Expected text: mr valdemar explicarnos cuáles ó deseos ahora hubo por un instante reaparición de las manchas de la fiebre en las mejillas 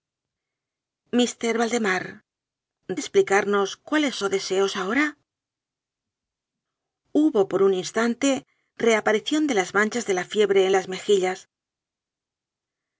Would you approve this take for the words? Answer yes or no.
yes